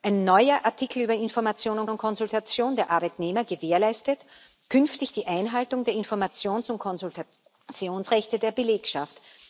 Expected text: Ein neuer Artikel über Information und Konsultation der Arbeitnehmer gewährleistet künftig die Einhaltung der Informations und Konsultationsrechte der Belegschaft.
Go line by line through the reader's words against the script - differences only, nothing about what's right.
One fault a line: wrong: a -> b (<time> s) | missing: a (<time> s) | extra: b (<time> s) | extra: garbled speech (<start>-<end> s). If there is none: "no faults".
extra: und (1.9 s)